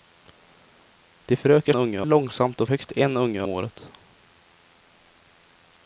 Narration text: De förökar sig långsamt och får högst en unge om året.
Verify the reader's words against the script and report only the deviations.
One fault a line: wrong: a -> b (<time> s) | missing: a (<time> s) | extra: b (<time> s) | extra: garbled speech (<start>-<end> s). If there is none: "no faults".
wrong: sig -> unge (1.7 s)
missing: får (2.7 s)
missing: om (3.4 s)